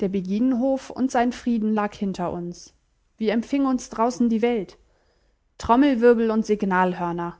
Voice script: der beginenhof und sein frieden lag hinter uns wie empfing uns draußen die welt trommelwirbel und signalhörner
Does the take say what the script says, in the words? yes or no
yes